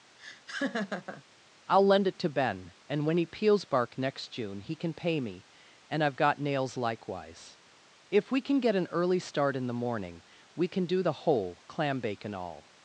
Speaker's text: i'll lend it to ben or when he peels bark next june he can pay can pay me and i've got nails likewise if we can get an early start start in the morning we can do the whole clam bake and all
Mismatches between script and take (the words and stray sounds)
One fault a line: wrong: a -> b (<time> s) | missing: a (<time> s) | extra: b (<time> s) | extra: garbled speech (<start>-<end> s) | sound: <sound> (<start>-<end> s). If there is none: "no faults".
sound: laugh (0.2-1.2 s)
wrong: or -> and (2.9 s)
missing: can pay (5.2 s)
missing: start (9.5 s)